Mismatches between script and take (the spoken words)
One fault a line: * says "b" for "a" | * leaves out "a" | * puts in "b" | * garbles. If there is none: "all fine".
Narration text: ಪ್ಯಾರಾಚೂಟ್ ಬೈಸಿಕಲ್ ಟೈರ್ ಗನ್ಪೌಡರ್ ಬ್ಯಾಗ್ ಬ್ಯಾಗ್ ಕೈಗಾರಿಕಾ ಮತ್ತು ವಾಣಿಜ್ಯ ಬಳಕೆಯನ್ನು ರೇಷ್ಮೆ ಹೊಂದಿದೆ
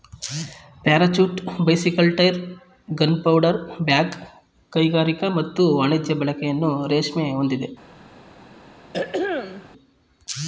* leaves out "ಬ್ಯಾಗ್"